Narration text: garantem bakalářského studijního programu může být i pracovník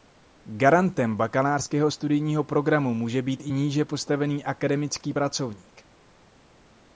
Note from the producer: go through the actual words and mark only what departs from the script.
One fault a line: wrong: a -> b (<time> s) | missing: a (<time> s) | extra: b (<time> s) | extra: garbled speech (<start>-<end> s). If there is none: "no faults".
extra: níže postavený akademický (3.5 s)